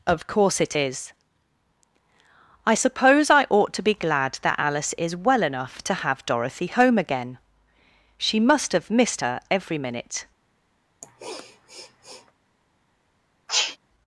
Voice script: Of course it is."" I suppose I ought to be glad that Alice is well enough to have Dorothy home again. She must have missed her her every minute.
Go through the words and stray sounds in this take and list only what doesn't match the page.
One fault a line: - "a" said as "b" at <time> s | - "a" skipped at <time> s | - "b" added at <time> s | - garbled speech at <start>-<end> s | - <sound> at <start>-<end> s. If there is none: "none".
- "her" skipped at 9.4 s
- sniff at 11.0-12.3 s
- sneeze at 13.5-13.8 s